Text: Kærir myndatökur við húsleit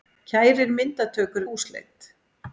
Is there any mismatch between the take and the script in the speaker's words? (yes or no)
yes